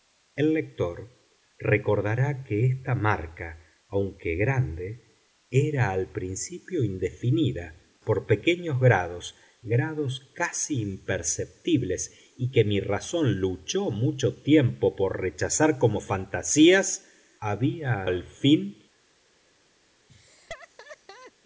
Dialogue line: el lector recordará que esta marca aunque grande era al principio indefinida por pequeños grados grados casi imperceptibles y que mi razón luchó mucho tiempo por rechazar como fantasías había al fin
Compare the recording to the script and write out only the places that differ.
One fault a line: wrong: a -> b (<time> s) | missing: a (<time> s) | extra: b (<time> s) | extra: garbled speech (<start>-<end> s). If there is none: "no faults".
no faults